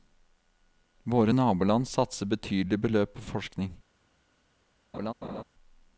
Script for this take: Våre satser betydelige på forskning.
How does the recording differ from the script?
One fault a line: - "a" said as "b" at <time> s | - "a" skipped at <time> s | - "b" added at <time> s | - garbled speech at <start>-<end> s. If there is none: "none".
- "naboland" added at 1.3 s
- "beløp" added at 2.8 s